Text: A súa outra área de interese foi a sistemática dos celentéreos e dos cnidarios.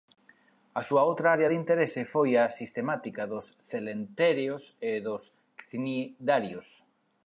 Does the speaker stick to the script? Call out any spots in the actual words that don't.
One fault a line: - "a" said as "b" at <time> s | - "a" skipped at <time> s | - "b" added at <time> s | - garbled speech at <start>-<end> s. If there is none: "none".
none